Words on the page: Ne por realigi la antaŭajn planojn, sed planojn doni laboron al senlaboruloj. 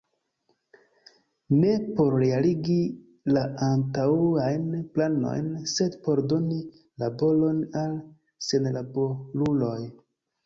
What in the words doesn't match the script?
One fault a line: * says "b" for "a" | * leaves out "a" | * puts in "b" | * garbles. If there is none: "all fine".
* says "por" for "planojn"